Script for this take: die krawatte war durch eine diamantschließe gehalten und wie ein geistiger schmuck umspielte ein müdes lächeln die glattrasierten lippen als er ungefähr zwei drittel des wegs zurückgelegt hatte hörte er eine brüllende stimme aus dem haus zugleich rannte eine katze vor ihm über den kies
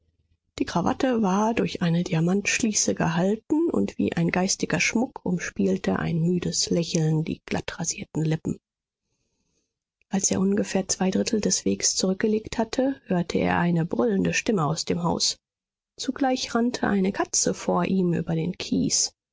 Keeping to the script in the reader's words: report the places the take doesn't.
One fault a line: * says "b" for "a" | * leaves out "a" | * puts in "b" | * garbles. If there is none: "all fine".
all fine